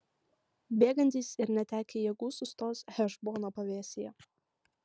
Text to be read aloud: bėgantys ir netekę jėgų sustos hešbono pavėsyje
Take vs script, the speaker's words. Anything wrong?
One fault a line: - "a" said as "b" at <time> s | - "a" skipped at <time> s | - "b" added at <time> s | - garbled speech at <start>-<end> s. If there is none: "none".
none